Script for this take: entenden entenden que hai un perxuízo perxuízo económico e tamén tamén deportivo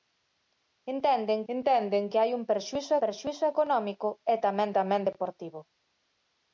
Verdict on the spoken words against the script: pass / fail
pass